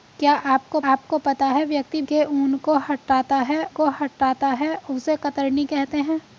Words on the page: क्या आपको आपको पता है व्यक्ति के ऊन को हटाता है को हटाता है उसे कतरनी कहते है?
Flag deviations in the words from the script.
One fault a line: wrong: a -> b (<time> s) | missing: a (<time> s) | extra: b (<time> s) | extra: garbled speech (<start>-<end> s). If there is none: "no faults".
no faults